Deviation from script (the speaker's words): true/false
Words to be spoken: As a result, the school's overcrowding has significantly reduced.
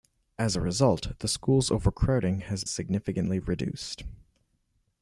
false